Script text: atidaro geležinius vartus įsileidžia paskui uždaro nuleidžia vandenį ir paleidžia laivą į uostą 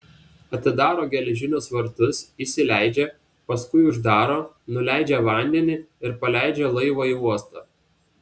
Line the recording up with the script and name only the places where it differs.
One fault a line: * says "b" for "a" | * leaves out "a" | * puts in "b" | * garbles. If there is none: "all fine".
all fine